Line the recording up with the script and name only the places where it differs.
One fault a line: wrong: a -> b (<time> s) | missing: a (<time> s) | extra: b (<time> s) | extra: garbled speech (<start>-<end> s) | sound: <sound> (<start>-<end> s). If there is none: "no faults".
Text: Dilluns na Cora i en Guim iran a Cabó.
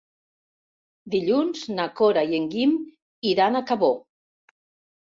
no faults